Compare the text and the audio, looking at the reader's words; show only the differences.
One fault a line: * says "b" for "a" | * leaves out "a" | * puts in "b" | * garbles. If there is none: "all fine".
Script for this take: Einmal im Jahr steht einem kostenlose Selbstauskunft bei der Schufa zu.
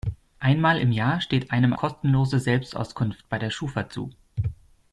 all fine